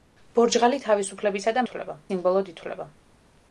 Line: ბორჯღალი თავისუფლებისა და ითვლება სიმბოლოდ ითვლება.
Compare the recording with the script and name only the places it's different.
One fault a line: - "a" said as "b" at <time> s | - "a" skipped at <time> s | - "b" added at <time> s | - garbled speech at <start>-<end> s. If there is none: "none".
none